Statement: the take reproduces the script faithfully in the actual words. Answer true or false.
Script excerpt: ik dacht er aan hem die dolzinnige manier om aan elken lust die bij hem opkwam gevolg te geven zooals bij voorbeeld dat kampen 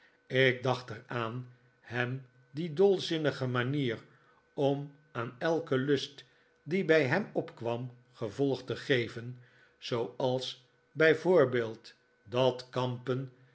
true